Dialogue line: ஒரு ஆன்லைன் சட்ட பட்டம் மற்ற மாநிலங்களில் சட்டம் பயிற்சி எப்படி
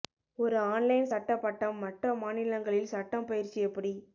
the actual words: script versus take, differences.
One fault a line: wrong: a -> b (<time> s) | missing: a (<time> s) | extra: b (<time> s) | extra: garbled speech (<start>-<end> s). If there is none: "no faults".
no faults